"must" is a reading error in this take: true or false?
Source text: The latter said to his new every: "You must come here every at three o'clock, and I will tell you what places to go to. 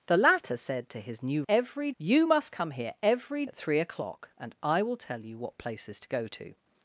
false